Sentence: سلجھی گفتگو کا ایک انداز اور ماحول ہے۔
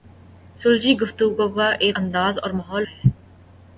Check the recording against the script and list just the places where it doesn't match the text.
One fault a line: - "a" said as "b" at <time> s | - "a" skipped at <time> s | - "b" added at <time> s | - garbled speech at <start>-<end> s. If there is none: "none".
none